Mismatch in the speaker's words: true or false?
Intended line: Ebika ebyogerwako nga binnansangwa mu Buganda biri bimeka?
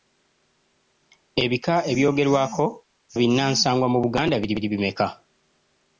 true